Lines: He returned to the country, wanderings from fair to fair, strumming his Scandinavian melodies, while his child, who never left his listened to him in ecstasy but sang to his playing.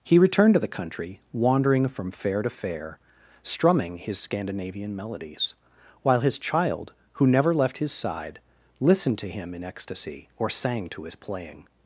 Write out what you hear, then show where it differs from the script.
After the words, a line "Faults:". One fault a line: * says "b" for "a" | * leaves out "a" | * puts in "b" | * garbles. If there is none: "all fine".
He returned to the country, wandering from fair to fair, strumming his Scandinavian melodies, while his child, who never left his side, listened to him in ecstasy or sang to his playing.
Faults:
* says "wandering" for "wanderings"
* puts in "side"
* says "or" for "but"